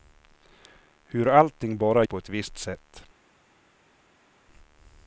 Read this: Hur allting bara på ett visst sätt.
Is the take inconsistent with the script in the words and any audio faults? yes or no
no